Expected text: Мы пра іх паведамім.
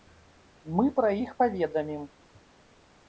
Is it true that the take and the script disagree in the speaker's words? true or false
false